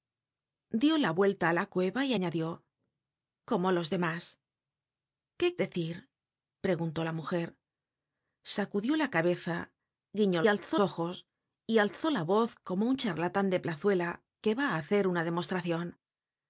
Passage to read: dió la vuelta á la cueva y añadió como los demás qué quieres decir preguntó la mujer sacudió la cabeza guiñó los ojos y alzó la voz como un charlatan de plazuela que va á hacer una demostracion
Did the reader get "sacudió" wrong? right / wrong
right